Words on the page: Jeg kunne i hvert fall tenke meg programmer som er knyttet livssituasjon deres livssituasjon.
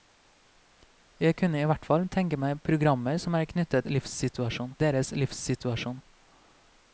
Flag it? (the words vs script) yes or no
no